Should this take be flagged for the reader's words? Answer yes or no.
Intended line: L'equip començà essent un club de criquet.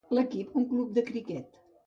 yes